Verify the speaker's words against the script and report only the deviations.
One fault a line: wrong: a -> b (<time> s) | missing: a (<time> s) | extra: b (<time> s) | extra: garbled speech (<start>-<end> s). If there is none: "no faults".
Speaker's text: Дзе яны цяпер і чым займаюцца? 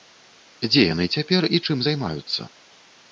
no faults